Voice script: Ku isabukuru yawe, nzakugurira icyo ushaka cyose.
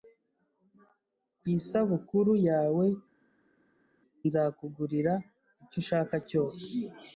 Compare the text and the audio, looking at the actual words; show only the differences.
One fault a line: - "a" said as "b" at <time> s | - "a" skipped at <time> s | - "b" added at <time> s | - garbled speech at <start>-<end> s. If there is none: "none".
none